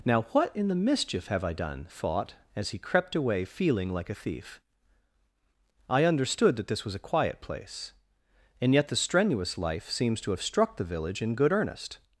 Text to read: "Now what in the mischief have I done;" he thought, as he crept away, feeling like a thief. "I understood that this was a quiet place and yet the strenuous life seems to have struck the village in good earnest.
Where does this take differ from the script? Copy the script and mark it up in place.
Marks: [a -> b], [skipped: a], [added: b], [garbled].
"Now what in the mischief have I done;" [skipped: he] thought, as he crept away, feeling like a thief. "I understood that this was a quiet place and yet the strenuous life seems to have struck the village in good earnest.